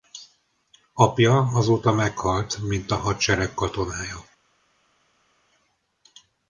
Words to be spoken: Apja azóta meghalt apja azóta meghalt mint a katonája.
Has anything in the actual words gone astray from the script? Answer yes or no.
yes